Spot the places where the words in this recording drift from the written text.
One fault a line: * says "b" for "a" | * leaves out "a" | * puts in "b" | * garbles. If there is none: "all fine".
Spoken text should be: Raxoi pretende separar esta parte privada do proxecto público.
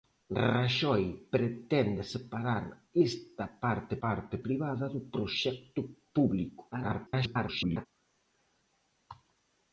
* puts in "parte"
* garbles